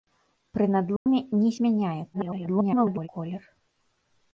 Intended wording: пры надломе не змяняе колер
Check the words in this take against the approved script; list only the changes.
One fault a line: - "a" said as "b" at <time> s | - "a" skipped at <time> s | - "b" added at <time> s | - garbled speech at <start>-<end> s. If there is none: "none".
- garbled speech at 2.1-3.1 s